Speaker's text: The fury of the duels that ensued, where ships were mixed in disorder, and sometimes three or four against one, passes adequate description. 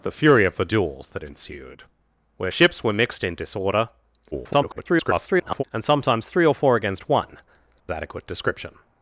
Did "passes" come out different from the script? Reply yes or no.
yes